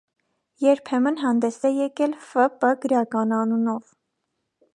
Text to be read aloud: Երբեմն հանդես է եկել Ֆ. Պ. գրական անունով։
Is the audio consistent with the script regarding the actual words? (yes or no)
yes